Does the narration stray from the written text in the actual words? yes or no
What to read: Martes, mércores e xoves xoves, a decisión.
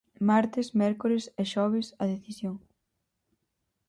yes